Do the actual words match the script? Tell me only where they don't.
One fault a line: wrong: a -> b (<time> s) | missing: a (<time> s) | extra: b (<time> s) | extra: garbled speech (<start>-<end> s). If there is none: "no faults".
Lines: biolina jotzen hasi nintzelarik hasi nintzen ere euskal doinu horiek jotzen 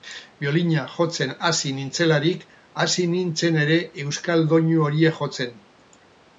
no faults